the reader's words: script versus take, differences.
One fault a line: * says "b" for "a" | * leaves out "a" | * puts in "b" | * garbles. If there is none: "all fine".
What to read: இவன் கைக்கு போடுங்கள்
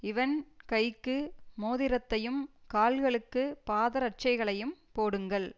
* puts in "மோதிரத்தையும் கால்களுக்குப் பாதரட்சைகளையும்"